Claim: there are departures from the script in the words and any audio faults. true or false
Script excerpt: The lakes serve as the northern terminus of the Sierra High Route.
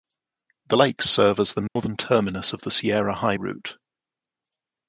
true